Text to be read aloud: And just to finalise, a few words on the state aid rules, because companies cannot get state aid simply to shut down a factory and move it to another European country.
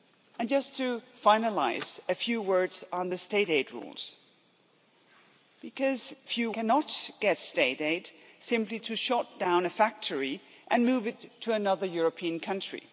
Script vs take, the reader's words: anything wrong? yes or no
yes